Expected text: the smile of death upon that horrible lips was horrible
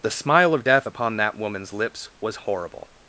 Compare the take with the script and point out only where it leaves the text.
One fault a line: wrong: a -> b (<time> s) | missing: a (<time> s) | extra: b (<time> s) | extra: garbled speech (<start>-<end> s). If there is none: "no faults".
wrong: horrible -> woman's (1.4 s)